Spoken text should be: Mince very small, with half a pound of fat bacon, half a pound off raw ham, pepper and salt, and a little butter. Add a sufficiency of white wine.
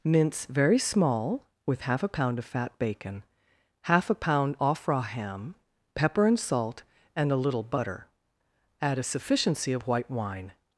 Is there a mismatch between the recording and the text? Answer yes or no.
no